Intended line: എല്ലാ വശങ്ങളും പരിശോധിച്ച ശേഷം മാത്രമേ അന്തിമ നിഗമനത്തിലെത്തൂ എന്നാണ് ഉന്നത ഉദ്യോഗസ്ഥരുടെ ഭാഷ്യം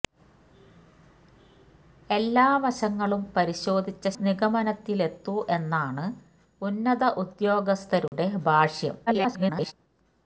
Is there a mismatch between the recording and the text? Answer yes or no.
yes